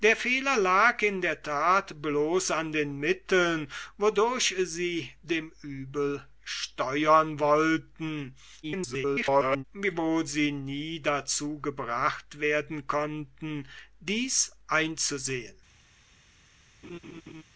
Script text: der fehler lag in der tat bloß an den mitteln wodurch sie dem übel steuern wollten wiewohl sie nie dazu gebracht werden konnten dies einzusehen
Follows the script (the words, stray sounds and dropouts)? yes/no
no